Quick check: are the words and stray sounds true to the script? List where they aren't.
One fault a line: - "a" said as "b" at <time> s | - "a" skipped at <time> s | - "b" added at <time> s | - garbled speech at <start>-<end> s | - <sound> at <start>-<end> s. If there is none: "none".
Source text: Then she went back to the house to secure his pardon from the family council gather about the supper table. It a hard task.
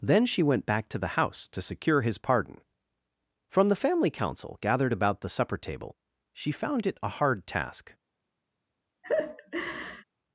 - "gather" said as "gathered" at 4.6 s
- "She found" added at 6.3 s
- laugh at 9.0-10.0 s